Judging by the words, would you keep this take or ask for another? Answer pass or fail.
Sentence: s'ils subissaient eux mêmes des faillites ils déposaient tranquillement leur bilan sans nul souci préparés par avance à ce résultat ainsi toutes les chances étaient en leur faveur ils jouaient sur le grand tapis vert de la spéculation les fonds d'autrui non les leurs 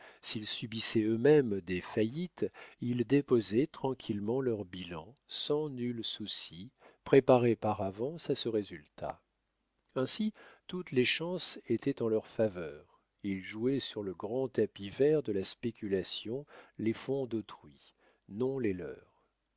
pass